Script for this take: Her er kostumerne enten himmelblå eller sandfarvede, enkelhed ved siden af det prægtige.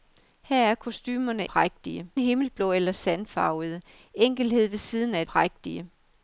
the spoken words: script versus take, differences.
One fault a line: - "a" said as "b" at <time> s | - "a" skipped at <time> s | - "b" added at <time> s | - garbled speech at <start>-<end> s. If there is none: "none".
- "enten" said as "prægtige" at 1.4 s
- "det" skipped at 5.2 s